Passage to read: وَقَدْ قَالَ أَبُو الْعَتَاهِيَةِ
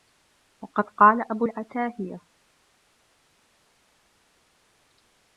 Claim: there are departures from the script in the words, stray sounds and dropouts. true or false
false